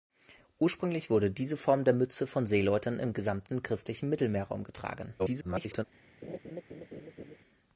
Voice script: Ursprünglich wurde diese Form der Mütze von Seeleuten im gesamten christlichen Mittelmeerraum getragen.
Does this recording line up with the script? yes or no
no